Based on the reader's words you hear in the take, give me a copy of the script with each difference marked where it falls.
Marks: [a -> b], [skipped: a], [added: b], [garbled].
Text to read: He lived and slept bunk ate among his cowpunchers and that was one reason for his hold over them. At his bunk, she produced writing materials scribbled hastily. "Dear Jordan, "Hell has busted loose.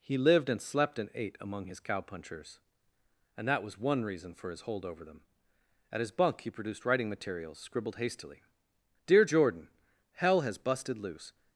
He lived and slept [bunk -> and] ate among his cowpunchers and that was one reason for his hold over them. At his bunk, [she -> he] produced writing materials scribbled hastily. "Dear Jordan, "Hell has busted loose.